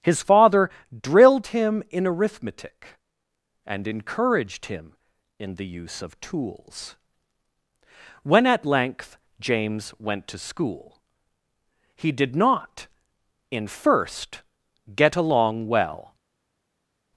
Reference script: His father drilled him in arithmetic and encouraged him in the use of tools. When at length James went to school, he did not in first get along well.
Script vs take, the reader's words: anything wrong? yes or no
no